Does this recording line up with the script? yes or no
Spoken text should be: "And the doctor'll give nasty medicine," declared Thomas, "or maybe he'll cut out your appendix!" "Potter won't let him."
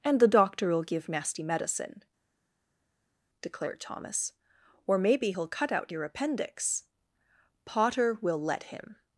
no